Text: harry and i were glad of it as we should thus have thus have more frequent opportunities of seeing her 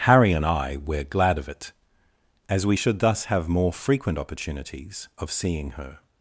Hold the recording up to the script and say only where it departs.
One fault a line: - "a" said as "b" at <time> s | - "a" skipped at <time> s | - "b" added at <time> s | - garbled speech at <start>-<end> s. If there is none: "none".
- "thus have" skipped at 3.5 s